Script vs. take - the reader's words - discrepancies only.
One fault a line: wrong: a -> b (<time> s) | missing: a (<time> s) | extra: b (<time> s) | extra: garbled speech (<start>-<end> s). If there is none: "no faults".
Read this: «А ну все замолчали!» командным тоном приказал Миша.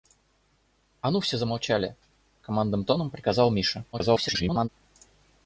extra: garbled speech (3.9-4.7 s)